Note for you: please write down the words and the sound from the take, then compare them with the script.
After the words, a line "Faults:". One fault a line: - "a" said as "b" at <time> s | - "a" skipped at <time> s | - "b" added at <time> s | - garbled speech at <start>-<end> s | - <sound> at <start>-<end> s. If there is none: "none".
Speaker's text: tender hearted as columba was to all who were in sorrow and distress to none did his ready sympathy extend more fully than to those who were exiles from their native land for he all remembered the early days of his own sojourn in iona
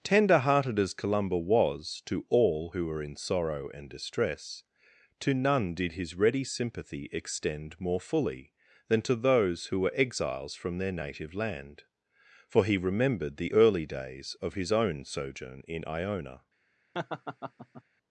tender hearted as columba was to all who were in sorrow and distress to none did his ready sympathy extend more fully than to those who were exiles from their native land for he remembered the early days of his own sojourn in iona
Faults:
- "all" skipped at 12.8 s
- laugh at 16.9-17.8 s